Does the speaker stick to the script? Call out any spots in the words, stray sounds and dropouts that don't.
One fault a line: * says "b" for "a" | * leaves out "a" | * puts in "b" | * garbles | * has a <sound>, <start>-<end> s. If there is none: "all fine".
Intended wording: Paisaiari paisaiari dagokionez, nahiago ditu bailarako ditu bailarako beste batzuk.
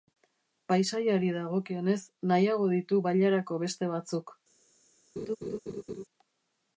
* leaves out "paisaiari"
* leaves out "ditu bailarako"
* has a laugh, 5.2-6.0 s